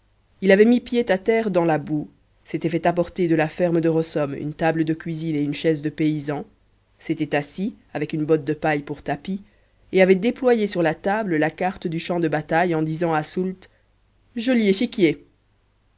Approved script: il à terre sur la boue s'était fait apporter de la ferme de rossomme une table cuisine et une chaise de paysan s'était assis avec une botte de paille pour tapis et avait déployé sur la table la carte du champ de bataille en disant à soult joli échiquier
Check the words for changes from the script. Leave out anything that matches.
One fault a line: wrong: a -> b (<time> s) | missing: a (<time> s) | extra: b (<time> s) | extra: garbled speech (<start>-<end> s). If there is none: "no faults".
extra: avait mis pied (0.5 s)
wrong: sur -> dans (1.5 s)
extra: de (4.8 s)